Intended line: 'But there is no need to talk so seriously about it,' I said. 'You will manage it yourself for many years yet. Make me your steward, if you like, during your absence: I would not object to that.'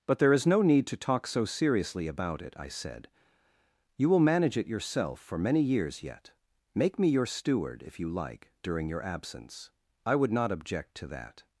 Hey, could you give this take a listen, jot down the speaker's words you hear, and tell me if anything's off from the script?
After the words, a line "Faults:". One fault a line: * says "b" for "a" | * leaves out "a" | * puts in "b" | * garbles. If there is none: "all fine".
'But there is no need to talk so seriously about it,' I said. 'You will manage it yourself for many years yet. Make me your steward, if you like, during your absence: I would not object to that.'
Faults:
all fine